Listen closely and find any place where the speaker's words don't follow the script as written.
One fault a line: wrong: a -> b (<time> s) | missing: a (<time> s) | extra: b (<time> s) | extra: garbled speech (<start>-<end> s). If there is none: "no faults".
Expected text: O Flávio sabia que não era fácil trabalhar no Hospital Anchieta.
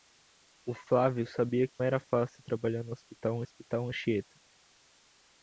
missing: não (1.8 s)
extra: Hospital (3.4 s)